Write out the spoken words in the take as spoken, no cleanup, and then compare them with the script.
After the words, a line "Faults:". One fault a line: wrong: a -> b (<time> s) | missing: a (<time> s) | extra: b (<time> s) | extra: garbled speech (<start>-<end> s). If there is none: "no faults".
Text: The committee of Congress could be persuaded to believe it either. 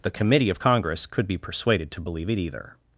The committee of Congress could be persuaded to believe it either.
Faults:
no faults